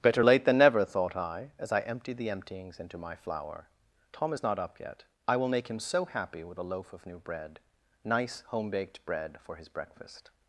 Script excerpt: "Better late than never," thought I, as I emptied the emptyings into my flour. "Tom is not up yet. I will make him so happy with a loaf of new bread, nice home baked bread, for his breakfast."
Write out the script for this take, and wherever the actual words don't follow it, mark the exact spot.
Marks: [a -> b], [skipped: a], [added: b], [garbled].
"Better late than never," thought I, as I emptied the emptyings into my flour. "Tom is not up yet. I will make him so happy with a loaf of new bread, nice home baked bread, for his breakfast."